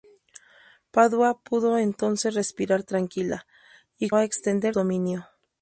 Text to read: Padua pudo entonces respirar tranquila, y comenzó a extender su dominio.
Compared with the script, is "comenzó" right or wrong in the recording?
wrong